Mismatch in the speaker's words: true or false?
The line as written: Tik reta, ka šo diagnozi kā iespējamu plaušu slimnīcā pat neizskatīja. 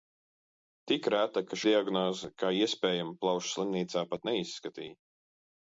true